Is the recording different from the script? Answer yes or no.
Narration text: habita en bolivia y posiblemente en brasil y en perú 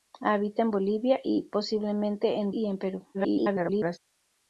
yes